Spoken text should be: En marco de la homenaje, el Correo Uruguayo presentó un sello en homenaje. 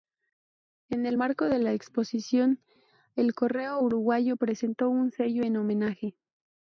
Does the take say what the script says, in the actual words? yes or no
no